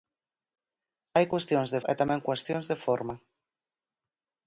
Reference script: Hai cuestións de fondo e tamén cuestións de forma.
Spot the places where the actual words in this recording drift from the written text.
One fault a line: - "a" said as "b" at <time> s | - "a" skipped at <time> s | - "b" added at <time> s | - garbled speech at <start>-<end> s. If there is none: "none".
- "fondo" skipped at 1.8 s